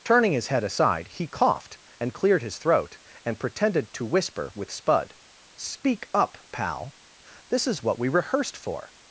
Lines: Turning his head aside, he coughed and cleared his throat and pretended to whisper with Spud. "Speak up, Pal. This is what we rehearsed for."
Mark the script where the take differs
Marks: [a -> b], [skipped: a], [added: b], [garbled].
Turning his head aside, he coughed and cleared his throat and pretended to whisper with Spud. "Speak up, Pal. This is what we rehearsed for."